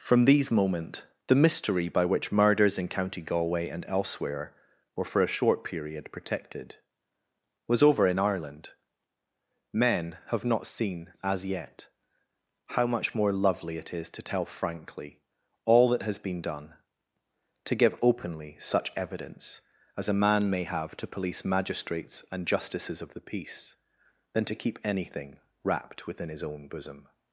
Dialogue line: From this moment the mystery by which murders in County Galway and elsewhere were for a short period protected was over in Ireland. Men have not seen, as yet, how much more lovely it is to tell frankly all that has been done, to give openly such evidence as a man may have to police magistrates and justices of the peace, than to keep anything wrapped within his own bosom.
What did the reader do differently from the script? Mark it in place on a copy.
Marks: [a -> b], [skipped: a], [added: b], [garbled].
From [this -> these] moment the mystery by which murders in County Galway and elsewhere were for a short period protected was over in Ireland. Men have not seen, as yet, how much more lovely it is to tell frankly all that has been done, to give openly such evidence as a man may have to police magistrates and justices of the peace, than to keep anything wrapped within his own bosom.